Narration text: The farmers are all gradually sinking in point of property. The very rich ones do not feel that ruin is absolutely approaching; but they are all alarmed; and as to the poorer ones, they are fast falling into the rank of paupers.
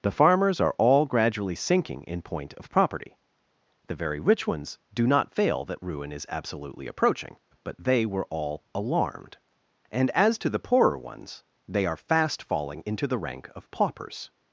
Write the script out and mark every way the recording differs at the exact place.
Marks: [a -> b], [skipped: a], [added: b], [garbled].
The farmers are all gradually sinking in point of property. The very rich ones do not [feel -> fail] that ruin is absolutely approaching; but they [are -> were] all alarmed; and as to the poorer ones, they are fast falling into the rank of paupers.